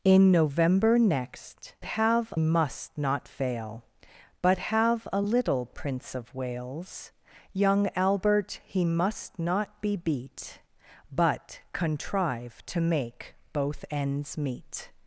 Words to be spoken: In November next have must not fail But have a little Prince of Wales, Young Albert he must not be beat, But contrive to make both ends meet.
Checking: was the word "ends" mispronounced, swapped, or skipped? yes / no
no